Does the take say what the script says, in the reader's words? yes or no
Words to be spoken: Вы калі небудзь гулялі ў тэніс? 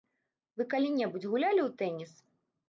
yes